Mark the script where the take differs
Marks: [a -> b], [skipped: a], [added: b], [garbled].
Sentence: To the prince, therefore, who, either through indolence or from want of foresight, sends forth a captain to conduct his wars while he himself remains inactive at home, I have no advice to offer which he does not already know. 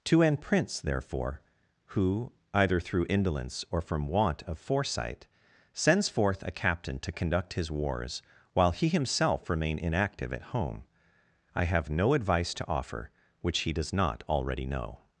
To [the -> an] prince, therefore, who, either through indolence or from want of foresight, sends forth a captain to conduct his wars while he himself [remains -> remain] inactive at home, I have no advice to offer which he does not already know.